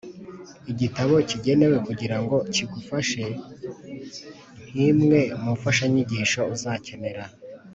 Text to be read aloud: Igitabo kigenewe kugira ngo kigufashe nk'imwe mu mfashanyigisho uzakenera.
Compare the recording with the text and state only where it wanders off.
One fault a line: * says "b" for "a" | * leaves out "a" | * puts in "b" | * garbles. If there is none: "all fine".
all fine